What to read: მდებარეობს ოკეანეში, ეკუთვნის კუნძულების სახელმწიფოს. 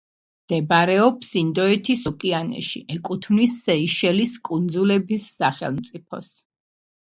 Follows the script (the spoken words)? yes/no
no